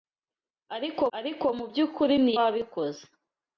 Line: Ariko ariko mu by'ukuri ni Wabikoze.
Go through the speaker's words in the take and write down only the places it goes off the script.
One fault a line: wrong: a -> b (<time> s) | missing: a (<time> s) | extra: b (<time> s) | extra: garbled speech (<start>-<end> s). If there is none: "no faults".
no faults